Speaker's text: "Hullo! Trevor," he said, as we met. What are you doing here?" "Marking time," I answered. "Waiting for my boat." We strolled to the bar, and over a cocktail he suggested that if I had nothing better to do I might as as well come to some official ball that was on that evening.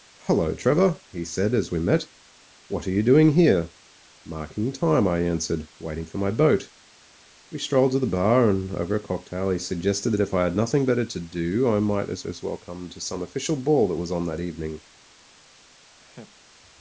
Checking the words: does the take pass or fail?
pass